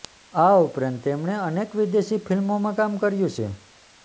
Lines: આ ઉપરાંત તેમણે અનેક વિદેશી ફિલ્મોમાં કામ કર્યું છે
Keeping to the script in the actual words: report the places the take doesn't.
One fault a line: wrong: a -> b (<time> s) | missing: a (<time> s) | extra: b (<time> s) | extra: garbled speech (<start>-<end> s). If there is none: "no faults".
no faults